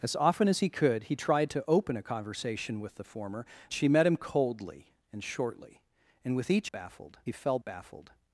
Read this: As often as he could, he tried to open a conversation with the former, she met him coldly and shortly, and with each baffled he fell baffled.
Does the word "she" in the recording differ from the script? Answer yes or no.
no